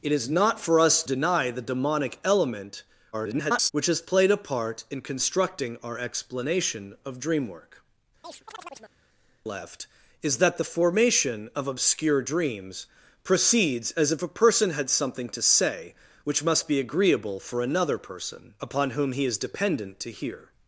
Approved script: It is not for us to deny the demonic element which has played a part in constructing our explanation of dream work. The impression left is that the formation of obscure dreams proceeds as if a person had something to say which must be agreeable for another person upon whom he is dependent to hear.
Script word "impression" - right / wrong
wrong